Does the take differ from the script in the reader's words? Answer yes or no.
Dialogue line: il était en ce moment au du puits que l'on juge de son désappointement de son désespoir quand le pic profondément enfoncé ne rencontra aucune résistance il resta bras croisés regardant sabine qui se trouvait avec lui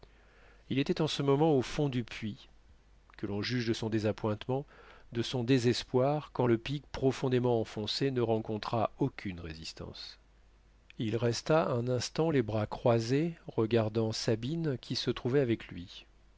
yes